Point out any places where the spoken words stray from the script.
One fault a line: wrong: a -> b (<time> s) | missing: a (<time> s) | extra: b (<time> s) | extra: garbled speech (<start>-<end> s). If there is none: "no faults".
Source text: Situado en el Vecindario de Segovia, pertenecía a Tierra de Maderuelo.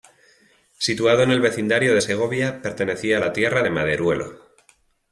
extra: la (3.2 s)